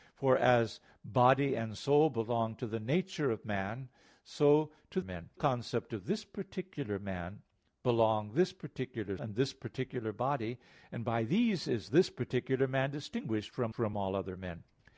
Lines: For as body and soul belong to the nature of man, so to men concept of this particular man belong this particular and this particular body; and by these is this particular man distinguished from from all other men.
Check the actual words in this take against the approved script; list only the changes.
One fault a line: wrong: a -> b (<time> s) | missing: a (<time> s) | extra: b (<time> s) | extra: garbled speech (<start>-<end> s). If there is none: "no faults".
no faults